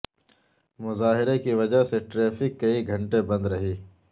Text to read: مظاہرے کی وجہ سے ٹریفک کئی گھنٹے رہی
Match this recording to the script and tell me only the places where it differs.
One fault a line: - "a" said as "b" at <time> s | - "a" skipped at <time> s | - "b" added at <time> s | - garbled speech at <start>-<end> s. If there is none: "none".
- "بند" added at 3.2 s